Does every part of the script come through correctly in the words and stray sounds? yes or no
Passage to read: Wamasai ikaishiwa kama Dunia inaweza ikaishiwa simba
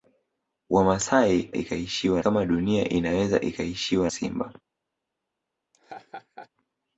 no